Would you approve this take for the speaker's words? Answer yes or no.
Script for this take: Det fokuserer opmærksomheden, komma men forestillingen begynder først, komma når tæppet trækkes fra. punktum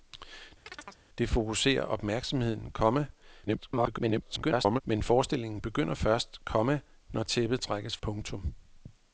no